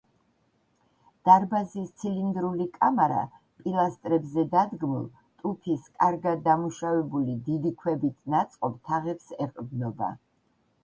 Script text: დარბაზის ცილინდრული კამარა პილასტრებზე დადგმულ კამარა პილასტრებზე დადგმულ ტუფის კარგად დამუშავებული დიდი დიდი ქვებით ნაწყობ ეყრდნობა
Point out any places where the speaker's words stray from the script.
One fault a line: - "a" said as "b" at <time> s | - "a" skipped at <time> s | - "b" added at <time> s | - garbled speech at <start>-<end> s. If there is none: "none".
- "კამარა პილასტრებზე დადგმულ" skipped at 5.1 s
- "დიდი" skipped at 7.7 s
- "თაღებს" added at 8.9 s